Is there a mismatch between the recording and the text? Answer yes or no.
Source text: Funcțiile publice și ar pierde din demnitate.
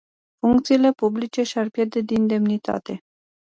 no